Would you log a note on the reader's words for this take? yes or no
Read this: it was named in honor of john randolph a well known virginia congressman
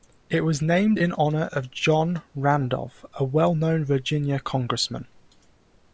no